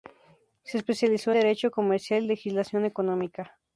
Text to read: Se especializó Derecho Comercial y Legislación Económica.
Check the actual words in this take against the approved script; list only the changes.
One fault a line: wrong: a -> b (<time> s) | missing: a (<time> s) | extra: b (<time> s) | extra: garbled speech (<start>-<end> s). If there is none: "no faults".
no faults